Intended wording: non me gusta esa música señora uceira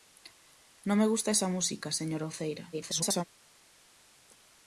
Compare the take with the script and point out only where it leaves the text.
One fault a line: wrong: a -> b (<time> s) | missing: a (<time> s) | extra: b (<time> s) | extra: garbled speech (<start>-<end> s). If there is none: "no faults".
extra: garbled speech (2.7-3.2 s)